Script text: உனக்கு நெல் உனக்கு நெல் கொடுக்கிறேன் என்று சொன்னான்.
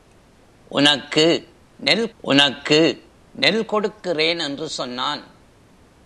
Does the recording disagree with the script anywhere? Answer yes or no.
no